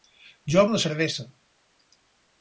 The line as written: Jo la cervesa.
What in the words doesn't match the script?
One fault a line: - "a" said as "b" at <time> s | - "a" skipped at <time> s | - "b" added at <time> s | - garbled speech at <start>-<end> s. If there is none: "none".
none